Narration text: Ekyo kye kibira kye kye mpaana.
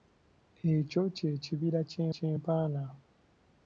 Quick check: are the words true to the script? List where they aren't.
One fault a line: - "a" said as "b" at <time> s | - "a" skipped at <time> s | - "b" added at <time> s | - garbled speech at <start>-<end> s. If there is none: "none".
none